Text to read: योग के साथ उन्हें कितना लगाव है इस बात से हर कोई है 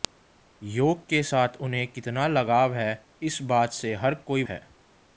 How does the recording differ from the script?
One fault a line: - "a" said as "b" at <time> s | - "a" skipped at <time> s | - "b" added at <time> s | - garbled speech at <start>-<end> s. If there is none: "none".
none